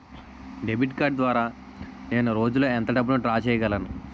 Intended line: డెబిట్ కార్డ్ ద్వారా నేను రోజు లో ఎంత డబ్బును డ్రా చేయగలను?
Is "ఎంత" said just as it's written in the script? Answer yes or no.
yes